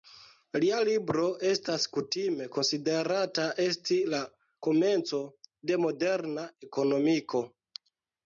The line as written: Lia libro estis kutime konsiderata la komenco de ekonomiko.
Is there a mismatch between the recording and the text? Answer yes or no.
yes